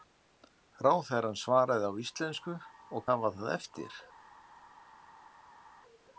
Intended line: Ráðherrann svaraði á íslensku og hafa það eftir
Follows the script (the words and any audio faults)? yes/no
yes